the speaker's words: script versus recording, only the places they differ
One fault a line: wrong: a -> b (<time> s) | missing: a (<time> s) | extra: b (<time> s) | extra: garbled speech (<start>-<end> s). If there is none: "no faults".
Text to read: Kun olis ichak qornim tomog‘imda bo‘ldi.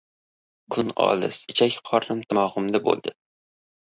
no faults